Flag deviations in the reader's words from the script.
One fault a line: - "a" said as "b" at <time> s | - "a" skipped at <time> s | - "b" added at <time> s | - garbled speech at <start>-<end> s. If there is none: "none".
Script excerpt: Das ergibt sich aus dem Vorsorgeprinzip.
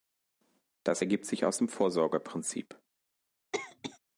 none